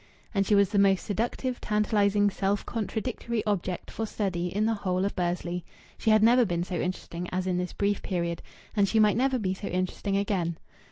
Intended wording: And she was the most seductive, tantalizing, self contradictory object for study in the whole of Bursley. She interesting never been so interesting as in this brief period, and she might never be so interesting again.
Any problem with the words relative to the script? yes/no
yes